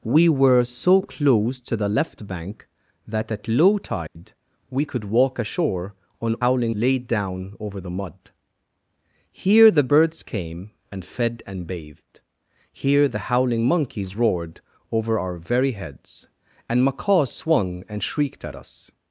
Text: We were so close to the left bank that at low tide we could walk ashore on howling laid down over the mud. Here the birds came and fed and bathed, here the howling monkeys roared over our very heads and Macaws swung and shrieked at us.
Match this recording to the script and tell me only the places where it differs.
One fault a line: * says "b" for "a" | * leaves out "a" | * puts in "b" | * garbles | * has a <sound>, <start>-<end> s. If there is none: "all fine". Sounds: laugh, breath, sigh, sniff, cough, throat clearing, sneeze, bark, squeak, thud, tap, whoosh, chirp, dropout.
* has a dropout, 4.1-4.2 s